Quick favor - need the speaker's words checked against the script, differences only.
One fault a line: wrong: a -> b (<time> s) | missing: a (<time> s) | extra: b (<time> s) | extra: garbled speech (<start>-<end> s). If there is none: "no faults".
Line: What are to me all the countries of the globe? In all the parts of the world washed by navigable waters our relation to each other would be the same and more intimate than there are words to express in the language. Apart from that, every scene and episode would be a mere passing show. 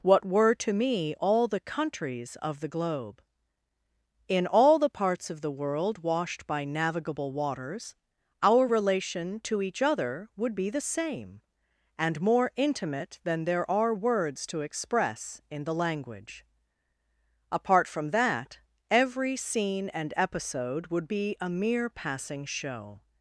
wrong: are -> were (0.2 s)